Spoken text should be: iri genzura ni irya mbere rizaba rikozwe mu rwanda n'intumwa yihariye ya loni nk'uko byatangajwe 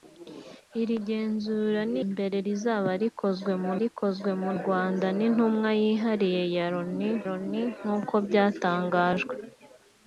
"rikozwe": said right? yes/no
yes